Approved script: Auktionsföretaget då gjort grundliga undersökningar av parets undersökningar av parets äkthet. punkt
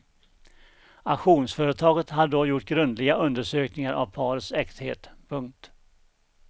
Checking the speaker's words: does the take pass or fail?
fail